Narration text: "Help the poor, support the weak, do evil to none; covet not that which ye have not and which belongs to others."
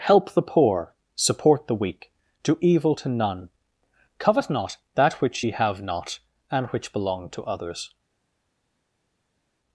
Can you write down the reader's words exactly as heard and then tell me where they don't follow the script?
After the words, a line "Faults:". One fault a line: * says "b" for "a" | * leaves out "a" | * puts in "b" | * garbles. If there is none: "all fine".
"Help the poor, support the weak, do evil to none; covet not that which ye have not and which belong to others."
Faults:
* says "belong" for "belongs"